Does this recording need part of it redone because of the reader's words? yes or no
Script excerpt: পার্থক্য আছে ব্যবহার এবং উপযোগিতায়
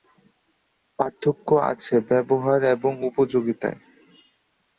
no